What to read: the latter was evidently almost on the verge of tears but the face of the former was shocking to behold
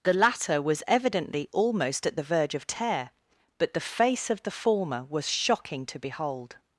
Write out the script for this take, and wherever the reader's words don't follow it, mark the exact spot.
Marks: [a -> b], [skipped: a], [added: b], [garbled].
the latter was evidently almost [on -> at] the verge of [tears -> tear] but the face of the former was shocking to behold